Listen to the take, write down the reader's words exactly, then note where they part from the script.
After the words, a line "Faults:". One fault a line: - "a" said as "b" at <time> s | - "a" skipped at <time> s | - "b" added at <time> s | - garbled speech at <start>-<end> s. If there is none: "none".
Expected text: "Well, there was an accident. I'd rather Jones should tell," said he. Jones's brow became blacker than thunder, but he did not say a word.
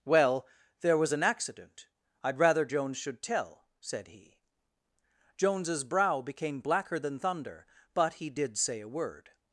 "Well, there was an accident. I'd rather Jones should tell," said he. Jones's brow became blacker than thunder, but he did say a word.
Faults:
- "not" skipped at 8.6 s